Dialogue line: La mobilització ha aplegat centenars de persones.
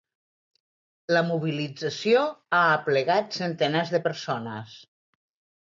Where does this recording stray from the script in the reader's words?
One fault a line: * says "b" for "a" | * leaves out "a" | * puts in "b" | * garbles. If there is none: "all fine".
all fine